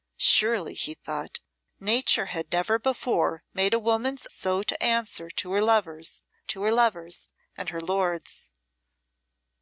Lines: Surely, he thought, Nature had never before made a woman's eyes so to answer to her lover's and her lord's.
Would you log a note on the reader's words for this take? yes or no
yes